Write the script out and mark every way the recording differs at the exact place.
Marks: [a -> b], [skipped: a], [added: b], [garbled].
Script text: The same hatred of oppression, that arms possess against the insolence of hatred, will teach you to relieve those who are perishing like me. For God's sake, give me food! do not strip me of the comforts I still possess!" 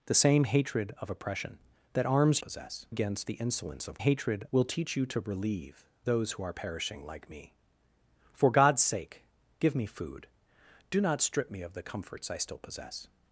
The same hatred of oppression, that arms possess against the insolence of hatred, will teach you to relieve those who are perishing like me. For God's sake, give me food! do not strip me of the comforts I still possess!"